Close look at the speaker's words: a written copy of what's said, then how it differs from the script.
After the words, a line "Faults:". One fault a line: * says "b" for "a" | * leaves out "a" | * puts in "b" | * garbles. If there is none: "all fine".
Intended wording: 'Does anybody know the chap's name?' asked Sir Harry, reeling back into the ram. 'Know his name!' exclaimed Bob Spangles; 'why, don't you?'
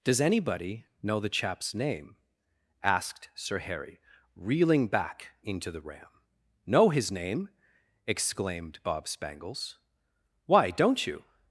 'Does anybody know the chap's name?' asked Sir Harry, reeling back into the ram. 'Know his name!' exclaimed Bob Spangles; 'why, don't you?'
Faults:
all fine